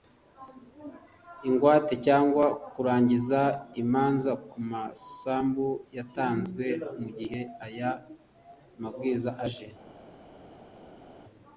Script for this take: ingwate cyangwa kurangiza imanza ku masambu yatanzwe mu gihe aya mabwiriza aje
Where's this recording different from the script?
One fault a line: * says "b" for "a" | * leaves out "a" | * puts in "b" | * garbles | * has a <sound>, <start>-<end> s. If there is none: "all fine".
all fine